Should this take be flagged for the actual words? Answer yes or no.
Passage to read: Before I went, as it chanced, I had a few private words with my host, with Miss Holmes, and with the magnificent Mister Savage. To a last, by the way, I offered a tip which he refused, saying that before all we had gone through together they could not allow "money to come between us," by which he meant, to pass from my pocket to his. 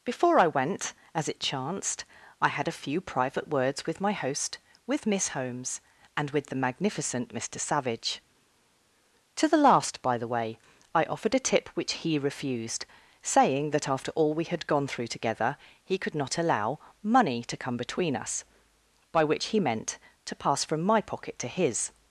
yes